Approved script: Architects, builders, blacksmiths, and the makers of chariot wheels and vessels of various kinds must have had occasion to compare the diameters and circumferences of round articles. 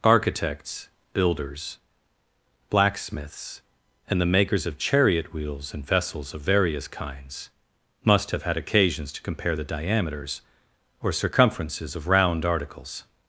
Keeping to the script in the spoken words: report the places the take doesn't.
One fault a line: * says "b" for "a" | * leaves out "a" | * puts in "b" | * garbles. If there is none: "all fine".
* says "occasions" for "occasion"
* says "or" for "and"